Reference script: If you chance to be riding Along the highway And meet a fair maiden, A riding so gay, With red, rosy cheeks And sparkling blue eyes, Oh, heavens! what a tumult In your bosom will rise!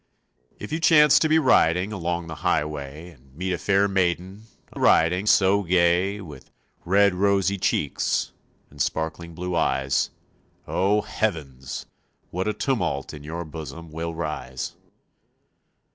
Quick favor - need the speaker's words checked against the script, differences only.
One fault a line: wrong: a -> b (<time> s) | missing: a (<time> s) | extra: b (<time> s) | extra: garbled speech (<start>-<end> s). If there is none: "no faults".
no faults